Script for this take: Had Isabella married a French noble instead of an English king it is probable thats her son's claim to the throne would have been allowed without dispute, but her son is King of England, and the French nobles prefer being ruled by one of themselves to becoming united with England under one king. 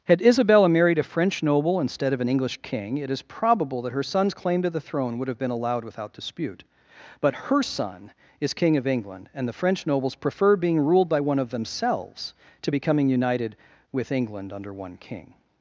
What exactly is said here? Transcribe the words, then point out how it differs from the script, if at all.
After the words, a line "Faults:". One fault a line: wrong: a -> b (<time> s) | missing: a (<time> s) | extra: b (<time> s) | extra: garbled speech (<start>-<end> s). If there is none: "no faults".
Had Isabella married a French noble instead of an English king it is probable that her son's claim to the throne would have been allowed without dispute, but her son is King of England, and the French nobles prefer being ruled by one of themselves to becoming united with England under one king.
Faults:
wrong: thats -> that (3.8 s)